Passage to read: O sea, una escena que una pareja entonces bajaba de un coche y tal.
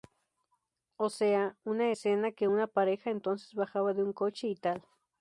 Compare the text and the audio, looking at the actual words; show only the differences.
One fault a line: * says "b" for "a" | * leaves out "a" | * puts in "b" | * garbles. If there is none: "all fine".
all fine